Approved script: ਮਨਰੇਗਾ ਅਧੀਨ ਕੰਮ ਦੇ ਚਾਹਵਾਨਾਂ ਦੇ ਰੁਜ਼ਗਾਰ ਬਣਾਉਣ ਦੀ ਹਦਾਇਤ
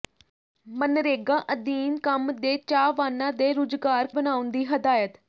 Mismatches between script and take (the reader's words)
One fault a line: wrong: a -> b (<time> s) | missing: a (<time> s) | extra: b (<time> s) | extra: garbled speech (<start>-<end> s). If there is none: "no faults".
no faults